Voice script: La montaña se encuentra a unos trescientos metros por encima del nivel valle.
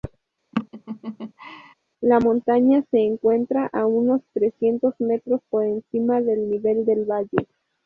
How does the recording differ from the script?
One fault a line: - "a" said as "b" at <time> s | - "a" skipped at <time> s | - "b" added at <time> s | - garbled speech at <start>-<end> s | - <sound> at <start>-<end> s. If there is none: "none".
- laugh at 0.5-1.7 s
- "del" added at 6.8 s